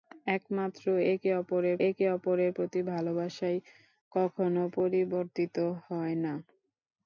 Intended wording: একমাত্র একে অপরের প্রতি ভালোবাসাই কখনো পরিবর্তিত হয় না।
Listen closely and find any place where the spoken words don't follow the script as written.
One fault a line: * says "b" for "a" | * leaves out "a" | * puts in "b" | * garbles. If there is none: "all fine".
* puts in "একে অপরের"